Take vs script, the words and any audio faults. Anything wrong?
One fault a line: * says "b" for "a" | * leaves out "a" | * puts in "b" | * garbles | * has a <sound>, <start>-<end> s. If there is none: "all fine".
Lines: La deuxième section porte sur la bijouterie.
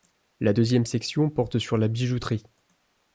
all fine